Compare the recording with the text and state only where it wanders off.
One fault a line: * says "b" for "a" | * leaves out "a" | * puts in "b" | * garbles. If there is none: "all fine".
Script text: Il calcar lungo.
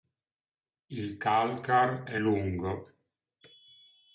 * puts in "è"